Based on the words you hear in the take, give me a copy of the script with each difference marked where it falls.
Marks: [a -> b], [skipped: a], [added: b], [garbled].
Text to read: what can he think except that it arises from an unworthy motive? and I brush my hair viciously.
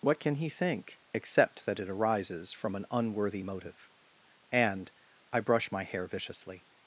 what can he think except that it arises from an unworthy motive? and I brush my hair viciously.